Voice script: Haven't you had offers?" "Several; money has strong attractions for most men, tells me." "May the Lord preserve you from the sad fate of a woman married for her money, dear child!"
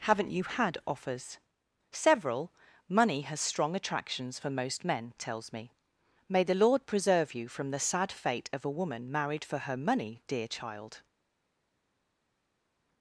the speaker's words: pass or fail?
pass